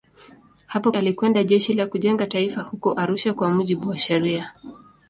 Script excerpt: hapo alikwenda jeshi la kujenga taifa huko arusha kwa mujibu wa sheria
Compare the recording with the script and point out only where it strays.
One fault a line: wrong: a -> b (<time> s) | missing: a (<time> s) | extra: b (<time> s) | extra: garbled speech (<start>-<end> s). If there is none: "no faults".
no faults